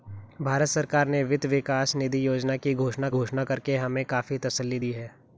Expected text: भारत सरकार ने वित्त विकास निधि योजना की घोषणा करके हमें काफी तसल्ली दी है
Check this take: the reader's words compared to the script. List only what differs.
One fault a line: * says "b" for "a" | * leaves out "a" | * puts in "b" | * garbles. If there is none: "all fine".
* puts in "घोषणा"